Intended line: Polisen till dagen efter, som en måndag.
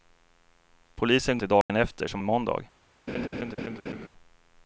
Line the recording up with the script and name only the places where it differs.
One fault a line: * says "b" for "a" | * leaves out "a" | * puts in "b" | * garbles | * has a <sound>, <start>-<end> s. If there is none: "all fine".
* has a dropout, 1.6-1.7 s
* has a laugh, 3.1-4.1 s